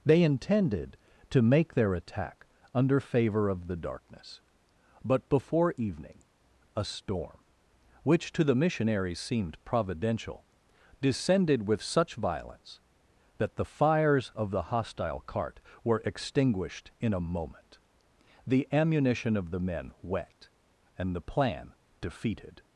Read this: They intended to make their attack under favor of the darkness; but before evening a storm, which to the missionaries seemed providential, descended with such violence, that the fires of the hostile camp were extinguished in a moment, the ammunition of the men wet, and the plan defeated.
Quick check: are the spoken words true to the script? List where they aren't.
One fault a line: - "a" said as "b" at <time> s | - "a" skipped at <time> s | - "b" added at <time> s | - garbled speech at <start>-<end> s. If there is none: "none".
- "camp" said as "cart" at 15.2 s